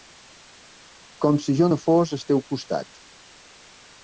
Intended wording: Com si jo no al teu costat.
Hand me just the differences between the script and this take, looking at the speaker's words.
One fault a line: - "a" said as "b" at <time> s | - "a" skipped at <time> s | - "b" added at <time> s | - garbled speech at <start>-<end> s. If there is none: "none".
- "fos" added at 1.9 s